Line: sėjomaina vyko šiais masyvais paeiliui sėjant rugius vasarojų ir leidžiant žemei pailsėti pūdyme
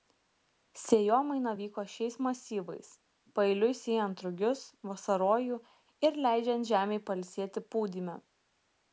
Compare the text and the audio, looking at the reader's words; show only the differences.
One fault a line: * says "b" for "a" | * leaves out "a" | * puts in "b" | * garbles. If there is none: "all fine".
all fine